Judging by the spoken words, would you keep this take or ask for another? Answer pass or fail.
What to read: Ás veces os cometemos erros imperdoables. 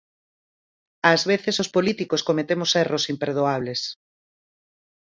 fail